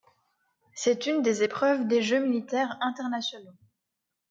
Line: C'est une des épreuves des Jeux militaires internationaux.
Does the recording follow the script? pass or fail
pass